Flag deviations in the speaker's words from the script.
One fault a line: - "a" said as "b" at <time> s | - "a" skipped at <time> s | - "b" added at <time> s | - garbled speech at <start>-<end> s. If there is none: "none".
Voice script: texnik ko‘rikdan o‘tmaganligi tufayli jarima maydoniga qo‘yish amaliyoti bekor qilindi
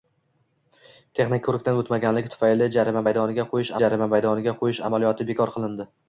- "jarima maydoniga qo‘yish" added at 3.8 s